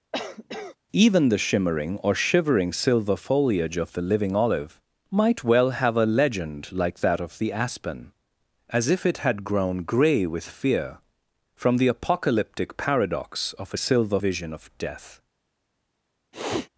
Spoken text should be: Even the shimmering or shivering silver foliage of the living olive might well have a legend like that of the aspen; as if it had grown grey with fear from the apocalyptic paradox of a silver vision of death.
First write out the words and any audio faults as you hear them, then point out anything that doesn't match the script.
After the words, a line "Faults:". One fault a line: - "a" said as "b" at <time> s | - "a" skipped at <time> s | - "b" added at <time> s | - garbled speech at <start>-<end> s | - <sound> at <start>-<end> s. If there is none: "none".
Even the shimmering or shivering silver foliage of the living olive might well have a legend like that of the aspen; as if it had grown grey with fear from the apocalyptic paradox of a silver vision of death.
Faults:
- cough at 0.1-0.8 s
- sniff at 16.3-16.7 s